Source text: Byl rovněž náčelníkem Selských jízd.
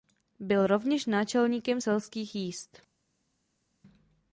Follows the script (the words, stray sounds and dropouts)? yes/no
yes